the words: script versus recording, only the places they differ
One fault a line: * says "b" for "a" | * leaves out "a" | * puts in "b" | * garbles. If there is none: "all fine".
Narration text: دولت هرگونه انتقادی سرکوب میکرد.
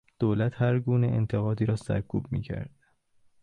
* puts in "را"